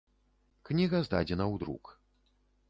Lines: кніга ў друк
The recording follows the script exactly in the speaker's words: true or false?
false